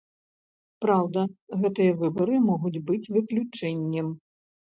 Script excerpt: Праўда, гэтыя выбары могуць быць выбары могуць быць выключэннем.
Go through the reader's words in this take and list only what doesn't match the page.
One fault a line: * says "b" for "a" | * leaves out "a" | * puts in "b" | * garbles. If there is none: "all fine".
* leaves out "выбары могуць быць"